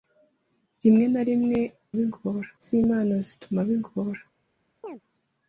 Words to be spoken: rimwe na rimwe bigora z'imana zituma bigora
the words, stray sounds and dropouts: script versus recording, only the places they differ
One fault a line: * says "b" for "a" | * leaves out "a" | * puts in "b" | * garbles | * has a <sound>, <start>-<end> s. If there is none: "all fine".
* has a chirp, 4.8-5.0 s